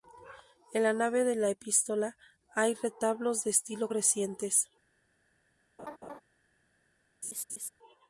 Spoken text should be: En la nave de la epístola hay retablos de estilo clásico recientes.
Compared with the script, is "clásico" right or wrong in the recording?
wrong